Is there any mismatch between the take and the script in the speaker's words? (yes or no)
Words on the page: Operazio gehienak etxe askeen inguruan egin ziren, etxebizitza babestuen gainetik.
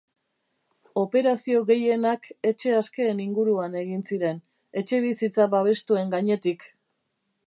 no